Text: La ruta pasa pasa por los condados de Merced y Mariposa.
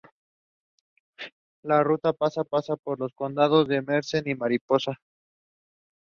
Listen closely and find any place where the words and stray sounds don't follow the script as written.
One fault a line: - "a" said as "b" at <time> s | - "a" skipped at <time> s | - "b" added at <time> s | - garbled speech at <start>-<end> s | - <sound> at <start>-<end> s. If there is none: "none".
none